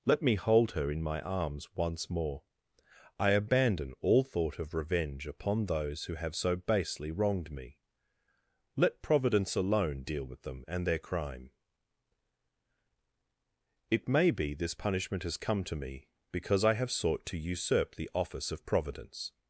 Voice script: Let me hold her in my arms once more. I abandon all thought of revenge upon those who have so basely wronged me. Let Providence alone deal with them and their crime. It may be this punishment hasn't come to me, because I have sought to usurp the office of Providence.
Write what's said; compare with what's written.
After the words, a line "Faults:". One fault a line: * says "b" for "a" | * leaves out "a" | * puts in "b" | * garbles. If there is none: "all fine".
Let me hold her in my arms once more. I abandon all thought of revenge upon those who have so basely wronged me. Let Providence alone deal with them and their crime. It may be this punishment has come to me, because I have sought to usurp the office of Providence.
Faults:
* says "has" for "hasn't"